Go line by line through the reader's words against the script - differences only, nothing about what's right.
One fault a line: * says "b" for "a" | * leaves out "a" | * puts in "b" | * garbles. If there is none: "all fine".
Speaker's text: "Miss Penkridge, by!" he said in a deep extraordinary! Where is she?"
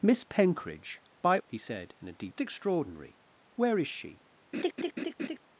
all fine